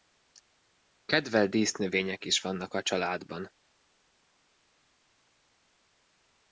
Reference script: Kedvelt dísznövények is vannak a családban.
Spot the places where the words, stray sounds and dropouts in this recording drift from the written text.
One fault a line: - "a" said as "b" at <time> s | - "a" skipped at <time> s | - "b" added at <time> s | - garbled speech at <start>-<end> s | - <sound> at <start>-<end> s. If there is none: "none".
none